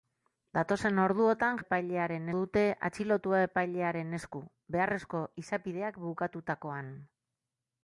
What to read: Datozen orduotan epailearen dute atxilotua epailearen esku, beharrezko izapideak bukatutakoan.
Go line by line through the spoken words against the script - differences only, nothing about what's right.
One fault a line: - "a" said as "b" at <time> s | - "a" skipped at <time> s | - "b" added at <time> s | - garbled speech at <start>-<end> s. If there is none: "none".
none